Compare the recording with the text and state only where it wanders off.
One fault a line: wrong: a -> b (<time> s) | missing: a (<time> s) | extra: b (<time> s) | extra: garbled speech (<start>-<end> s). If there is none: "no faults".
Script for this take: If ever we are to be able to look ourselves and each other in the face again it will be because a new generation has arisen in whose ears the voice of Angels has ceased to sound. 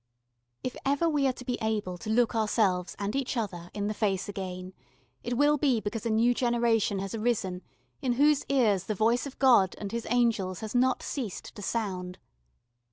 extra: God and His (9.4 s)
extra: not (10.7 s)